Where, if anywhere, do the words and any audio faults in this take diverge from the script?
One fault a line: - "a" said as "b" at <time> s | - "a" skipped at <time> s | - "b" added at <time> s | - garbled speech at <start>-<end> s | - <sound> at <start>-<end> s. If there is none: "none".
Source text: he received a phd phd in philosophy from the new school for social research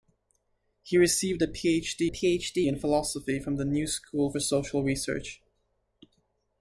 none